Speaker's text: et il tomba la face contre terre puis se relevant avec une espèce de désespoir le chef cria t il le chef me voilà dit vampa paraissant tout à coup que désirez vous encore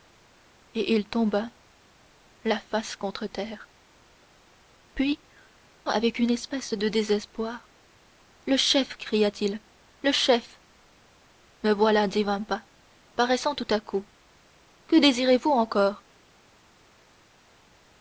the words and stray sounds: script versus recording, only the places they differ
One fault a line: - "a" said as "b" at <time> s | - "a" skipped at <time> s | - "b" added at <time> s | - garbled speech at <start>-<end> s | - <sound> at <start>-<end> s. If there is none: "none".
- "se relevant" skipped at 5.2 s